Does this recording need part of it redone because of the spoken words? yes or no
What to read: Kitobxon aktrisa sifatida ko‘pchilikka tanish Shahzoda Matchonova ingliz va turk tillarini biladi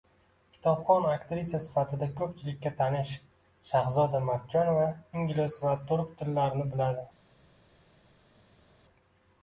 no